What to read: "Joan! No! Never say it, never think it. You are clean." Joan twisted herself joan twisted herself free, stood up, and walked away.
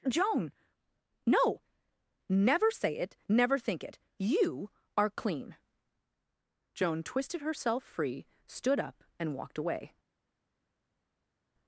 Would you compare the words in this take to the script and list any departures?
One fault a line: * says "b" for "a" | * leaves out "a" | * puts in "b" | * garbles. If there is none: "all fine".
* leaves out "joan twisted herself"